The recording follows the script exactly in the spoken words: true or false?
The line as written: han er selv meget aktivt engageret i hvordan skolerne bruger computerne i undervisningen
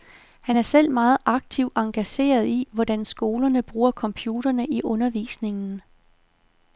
true